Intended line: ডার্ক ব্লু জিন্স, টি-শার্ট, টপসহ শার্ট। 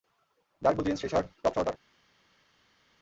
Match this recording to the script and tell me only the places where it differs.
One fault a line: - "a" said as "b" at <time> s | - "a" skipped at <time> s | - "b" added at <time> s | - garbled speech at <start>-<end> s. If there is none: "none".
none